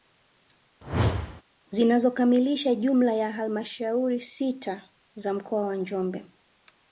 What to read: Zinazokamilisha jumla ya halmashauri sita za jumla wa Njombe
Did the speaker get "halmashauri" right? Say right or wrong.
right